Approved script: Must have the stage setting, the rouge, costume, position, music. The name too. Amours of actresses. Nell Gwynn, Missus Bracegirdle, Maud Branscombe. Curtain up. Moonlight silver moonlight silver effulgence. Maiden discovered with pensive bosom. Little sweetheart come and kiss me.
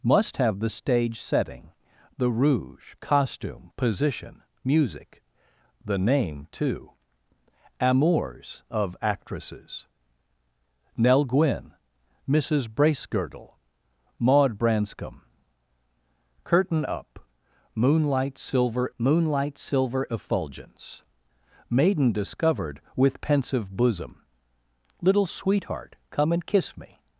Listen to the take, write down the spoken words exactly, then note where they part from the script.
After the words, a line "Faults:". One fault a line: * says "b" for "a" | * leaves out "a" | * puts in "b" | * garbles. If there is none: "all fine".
Must have the stage setting, the rouge, costume, position, music. The name too. Amours of actresses. Nell Gwynn, Missus Bracegirdle, Maud Branscombe. Curtain up. Moonlight silver moonlight silver effulgence. Maiden discovered with pensive bosom. Little sweetheart come and kiss me.
Faults:
all fine